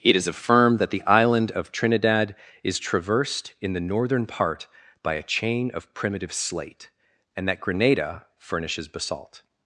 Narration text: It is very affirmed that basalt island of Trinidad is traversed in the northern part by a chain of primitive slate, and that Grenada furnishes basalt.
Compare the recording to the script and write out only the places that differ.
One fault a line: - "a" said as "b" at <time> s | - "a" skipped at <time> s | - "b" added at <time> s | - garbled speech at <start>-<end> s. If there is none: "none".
- "very" skipped at 0.3 s
- "basalt" said as "the" at 0.9 s